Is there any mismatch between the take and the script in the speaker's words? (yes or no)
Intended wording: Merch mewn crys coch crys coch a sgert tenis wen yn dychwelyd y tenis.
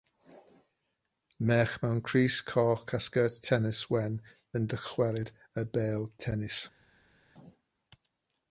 yes